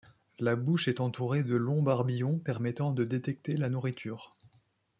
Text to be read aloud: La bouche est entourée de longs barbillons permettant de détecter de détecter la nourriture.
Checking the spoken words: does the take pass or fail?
fail